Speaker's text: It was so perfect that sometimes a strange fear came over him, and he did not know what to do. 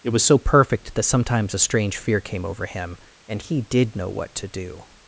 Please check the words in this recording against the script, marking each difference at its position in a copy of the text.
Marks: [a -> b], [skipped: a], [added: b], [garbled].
It was so perfect that sometimes a strange fear came over him, and he did [skipped: not] know what to do.